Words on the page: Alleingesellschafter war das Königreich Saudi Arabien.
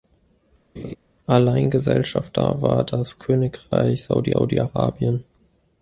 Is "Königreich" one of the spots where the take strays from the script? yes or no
no